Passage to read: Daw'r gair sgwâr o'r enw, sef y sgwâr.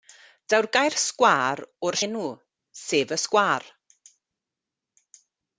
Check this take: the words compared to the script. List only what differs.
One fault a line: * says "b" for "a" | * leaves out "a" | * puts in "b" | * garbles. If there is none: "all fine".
all fine